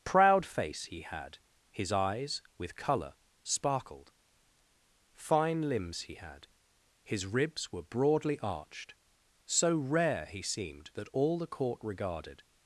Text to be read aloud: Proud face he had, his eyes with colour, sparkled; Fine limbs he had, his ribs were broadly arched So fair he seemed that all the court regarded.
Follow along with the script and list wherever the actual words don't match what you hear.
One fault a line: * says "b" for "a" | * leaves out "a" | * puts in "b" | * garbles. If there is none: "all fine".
* says "rare" for "fair"